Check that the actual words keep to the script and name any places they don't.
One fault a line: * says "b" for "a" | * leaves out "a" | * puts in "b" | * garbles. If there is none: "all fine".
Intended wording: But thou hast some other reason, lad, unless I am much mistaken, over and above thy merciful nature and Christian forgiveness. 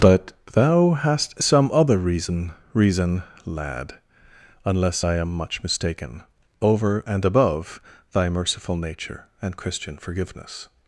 * puts in "reason"